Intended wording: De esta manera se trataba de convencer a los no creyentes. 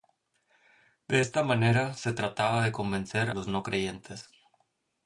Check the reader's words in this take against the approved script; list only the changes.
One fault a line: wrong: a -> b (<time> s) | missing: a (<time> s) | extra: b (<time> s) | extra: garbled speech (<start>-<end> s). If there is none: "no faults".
missing: a (3.3 s)